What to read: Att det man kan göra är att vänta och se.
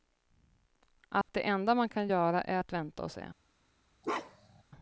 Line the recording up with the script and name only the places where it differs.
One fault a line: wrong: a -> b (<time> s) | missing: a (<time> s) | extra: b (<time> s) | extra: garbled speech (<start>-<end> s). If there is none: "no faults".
extra: enda (1.4 s)